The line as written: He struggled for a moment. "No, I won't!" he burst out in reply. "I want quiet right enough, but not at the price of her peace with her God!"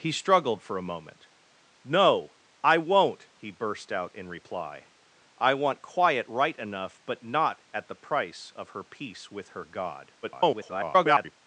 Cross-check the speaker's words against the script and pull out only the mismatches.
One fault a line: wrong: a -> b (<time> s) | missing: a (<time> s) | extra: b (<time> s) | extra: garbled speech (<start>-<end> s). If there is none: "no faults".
extra: garbled speech (10.2-11.3 s)